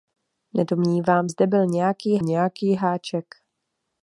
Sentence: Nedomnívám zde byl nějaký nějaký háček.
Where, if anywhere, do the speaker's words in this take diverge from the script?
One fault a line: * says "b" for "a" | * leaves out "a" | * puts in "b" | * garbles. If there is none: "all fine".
all fine